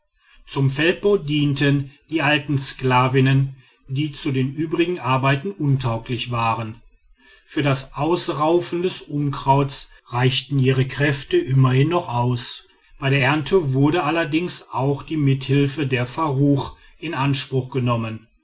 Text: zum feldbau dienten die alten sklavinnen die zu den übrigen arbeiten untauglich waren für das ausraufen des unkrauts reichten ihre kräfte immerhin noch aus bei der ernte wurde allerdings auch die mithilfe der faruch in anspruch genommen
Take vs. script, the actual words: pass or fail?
pass